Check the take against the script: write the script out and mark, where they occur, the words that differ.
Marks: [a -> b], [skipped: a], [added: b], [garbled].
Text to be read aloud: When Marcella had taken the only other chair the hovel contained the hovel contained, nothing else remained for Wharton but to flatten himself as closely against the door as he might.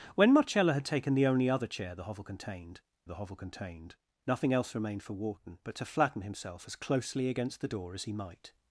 When Marcella had taken the only other chair the hovel contained the hovel contained, nothing else remained for Wharton but to flatten himself as closely against the door as he might.